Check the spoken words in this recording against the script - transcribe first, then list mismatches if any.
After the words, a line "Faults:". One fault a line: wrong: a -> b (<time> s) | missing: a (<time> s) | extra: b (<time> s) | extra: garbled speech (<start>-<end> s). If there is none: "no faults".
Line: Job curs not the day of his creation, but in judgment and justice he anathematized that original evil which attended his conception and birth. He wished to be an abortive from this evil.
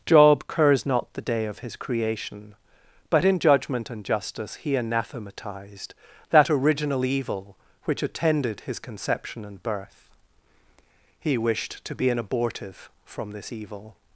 Job curs not the day of his creation, but in judgment and justice he anathematized that original evil which attended his conception and birth. He wished to be an abortive from this evil.
Faults:
no faults